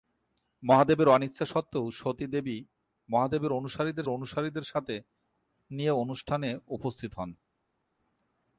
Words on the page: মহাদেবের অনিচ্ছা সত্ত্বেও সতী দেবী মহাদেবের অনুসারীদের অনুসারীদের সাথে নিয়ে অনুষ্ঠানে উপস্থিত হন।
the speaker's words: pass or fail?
pass